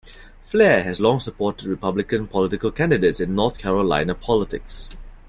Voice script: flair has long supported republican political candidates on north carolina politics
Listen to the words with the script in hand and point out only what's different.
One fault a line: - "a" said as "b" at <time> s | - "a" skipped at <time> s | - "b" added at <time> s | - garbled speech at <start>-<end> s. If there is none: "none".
- "on" said as "in" at 3.2 s